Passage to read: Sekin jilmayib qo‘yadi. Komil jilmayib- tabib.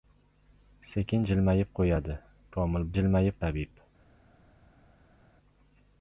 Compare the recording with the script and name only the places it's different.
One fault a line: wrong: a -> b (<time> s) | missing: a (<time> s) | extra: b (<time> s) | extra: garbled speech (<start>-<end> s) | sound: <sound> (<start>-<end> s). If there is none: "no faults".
no faults